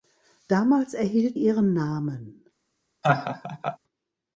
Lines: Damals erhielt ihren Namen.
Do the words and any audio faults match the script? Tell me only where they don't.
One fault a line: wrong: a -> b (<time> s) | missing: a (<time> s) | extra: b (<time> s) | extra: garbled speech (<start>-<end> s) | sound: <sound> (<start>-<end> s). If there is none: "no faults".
sound: laugh (3.0-3.8 s)